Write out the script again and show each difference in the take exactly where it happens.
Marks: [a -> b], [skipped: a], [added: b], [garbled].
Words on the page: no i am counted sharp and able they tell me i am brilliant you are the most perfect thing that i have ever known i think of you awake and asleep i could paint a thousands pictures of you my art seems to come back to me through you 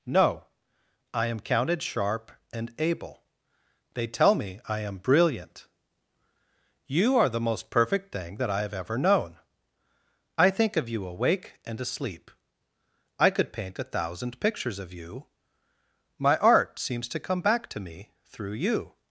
no i am counted sharp and able they tell me i am brilliant you are the most perfect thing that i have ever known i think of you awake and asleep i could paint a [thousands -> thousand] pictures of you my art seems to come back to me through you